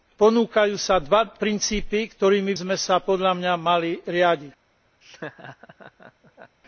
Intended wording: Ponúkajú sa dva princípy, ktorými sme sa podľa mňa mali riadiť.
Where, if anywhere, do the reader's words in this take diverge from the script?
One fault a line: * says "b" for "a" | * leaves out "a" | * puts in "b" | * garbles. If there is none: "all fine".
all fine